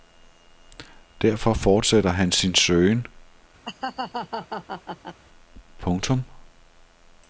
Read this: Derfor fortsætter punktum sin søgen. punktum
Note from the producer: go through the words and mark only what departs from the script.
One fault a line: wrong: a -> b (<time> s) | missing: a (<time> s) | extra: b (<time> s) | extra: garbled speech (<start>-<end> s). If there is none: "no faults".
wrong: punktum -> han (2.1 s)